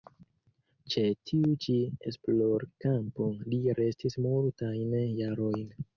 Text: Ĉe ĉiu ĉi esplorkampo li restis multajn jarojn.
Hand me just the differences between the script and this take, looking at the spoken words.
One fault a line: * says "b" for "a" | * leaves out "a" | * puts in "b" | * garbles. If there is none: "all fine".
* says "tiu" for "ĉiu"